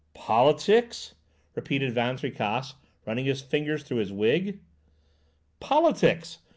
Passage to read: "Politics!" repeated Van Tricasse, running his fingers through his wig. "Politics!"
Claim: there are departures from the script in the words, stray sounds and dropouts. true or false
false